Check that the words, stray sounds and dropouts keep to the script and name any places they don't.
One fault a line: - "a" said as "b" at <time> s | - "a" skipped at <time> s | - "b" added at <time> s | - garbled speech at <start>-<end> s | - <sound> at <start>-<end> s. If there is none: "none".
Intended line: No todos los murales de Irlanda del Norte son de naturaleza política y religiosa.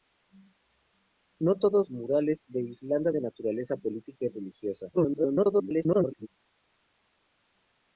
- "los" skipped at 1.9 s
- "del Norte son" skipped at 3.1 s
- garbled speech at 4.9-6.3 s